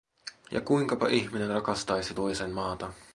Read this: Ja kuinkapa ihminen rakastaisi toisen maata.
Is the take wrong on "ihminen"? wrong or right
right